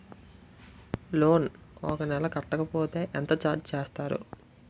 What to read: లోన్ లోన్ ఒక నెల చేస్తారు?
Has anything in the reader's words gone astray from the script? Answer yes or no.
yes